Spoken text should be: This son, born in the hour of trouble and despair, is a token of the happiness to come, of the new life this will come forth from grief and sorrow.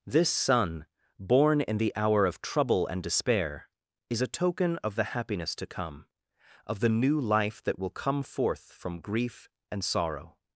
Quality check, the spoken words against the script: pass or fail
fail